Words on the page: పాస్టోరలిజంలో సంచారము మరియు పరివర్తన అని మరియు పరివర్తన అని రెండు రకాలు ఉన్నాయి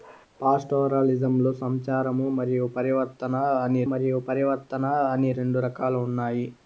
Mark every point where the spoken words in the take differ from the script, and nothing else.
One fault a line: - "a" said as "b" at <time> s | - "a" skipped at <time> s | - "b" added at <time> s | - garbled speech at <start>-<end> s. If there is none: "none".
none